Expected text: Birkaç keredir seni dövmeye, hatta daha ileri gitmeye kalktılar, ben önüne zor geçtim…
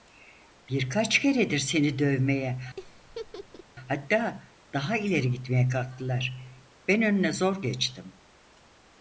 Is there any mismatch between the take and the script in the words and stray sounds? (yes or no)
yes